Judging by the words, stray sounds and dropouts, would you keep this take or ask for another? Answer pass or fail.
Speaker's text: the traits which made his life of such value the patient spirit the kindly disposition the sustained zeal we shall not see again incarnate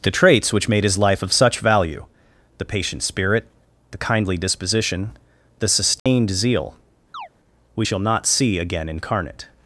fail